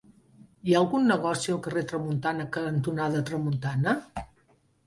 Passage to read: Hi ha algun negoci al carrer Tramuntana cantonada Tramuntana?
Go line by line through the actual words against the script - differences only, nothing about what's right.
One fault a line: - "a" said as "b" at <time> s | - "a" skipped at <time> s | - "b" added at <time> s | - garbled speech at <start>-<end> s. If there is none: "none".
none